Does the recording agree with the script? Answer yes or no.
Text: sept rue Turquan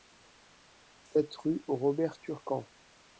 no